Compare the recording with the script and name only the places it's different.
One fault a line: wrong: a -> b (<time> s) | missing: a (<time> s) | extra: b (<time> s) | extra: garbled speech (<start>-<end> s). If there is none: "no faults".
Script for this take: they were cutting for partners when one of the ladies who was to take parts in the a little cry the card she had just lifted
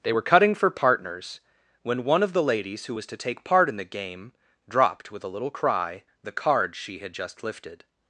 wrong: parts -> part (3.4 s)
extra: game dropped with (3.8 s)